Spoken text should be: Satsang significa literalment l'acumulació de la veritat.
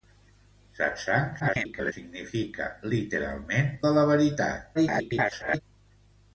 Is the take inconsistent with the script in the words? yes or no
yes